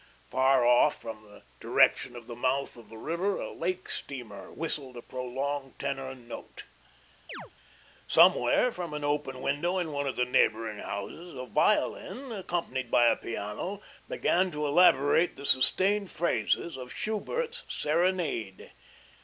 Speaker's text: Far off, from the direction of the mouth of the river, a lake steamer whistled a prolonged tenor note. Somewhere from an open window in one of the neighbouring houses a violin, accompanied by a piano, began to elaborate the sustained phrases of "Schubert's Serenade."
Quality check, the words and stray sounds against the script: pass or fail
fail